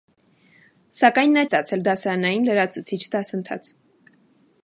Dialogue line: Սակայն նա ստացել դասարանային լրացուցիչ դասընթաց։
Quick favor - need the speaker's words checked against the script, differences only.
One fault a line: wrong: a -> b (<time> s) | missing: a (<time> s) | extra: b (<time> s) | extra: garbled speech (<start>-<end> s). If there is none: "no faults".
no faults